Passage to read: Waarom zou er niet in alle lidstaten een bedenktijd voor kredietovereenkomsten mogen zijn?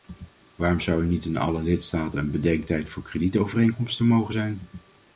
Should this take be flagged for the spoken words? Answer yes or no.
no